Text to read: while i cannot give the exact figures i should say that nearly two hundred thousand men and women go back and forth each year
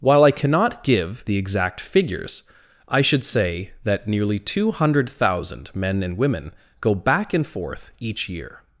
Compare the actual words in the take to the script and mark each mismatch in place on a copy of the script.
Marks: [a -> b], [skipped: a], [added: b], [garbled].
while i cannot give the exact figures i should say that nearly two hundred thousand men and women go back and forth each year